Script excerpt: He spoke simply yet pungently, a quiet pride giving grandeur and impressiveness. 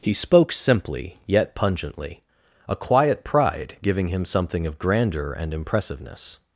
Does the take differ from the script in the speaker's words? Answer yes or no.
yes